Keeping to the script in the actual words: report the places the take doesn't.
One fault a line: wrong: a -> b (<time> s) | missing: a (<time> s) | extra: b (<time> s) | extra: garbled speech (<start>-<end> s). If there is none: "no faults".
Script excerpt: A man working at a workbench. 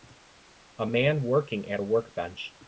no faults